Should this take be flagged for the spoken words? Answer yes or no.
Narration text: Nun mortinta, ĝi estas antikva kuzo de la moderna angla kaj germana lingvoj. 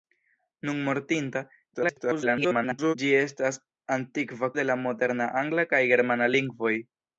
yes